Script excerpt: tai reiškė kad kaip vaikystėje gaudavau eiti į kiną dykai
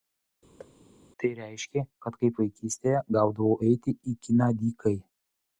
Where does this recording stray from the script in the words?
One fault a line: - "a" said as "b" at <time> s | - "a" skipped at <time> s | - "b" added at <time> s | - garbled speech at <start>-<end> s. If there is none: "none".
none